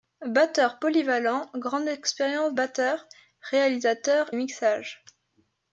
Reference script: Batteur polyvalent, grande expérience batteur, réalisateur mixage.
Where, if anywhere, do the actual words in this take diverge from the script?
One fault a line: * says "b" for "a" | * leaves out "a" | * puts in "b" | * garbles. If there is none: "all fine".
all fine